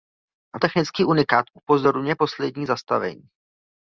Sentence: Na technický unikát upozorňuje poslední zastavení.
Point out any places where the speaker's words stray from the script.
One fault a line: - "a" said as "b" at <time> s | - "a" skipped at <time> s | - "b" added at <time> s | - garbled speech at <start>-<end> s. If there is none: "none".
none